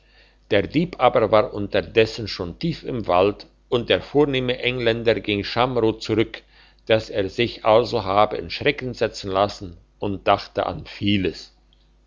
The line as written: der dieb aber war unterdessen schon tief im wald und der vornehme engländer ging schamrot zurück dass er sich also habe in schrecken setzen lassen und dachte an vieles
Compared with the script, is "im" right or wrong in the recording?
right